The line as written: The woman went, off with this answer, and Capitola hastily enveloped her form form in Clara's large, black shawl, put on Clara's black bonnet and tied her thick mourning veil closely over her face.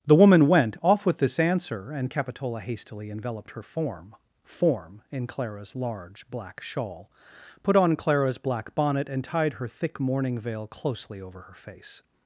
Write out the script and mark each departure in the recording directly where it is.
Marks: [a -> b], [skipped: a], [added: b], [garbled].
The woman went, off with this answer, and Capitola hastily enveloped her form form in Clara's large, black shawl, put on Clara's black bonnet and tied her thick mourning veil closely over her face.